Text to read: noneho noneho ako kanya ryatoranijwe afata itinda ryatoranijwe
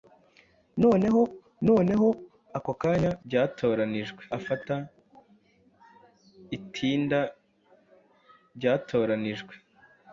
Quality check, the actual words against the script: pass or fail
pass